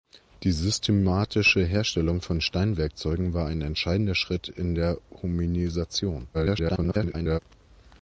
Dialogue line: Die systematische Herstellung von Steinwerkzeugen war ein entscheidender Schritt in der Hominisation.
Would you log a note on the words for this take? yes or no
yes